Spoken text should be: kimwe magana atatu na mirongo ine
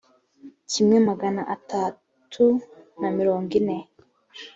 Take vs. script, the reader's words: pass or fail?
pass